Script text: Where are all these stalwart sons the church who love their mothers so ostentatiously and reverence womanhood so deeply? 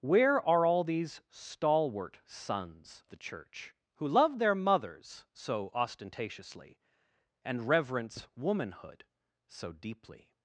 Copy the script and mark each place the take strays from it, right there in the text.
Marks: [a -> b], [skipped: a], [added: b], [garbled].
Where are all these stalwart sons the church who love their mothers so ostentatiously and reverence womanhood so deeply?